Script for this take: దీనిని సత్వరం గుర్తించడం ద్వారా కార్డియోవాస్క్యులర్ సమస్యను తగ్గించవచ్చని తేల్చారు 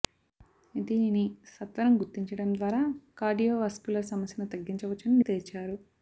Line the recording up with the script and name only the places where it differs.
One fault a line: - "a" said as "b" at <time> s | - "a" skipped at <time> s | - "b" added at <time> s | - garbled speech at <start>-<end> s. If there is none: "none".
none